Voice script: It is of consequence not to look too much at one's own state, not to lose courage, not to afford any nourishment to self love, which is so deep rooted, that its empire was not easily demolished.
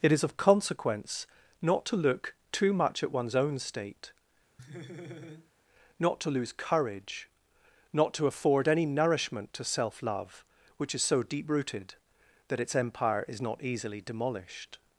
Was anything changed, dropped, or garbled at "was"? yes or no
yes